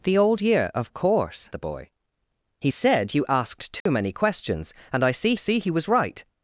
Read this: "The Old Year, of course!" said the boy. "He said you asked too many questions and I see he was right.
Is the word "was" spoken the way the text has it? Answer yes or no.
yes